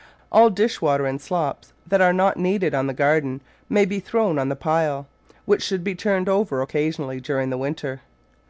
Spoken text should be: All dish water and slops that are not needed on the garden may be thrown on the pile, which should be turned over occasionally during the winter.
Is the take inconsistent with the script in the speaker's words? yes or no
no